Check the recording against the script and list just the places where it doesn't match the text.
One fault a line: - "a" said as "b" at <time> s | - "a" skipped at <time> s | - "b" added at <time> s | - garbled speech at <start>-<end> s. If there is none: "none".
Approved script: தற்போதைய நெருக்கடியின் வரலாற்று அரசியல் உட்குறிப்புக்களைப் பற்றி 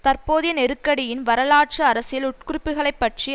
none